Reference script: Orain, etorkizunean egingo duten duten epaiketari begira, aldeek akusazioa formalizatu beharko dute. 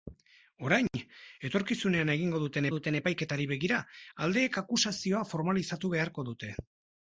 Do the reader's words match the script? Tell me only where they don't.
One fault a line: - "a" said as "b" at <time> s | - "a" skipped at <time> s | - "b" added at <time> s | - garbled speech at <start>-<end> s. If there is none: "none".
none